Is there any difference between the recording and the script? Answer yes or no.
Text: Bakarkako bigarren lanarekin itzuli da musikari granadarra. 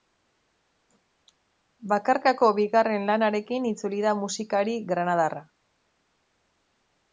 no